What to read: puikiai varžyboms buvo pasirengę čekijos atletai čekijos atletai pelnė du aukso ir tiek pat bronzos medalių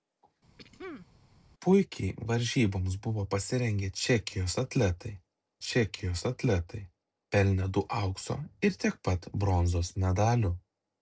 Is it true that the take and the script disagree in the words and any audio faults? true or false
true